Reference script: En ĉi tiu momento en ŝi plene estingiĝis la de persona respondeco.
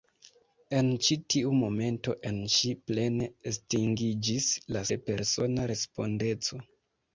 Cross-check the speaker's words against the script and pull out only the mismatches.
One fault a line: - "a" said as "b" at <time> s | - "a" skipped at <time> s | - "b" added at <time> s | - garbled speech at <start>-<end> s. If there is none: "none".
none